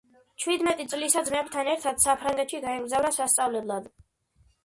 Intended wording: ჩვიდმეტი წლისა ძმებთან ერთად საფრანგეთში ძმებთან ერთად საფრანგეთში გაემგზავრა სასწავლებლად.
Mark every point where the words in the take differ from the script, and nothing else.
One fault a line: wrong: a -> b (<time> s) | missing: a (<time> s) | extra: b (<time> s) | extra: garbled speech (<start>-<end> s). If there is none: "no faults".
missing: ძმებთან ერთად საფრანგეთში (2.6 s)